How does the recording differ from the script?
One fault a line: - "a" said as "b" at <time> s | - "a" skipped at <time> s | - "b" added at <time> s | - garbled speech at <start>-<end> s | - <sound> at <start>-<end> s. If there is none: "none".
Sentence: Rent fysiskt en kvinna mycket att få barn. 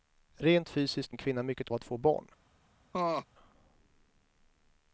- laugh at 2.9-3.3 s